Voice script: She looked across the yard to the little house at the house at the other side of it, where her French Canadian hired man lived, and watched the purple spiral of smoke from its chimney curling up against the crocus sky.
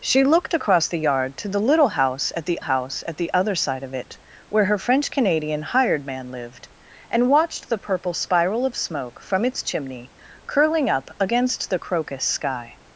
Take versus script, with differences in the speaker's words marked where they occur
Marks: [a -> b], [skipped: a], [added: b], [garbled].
She looked across the yard to the little house at the house at the other side of it, where her French Canadian hired man lived, and watched the purple spiral of smoke from its chimney curling up against the crocus sky.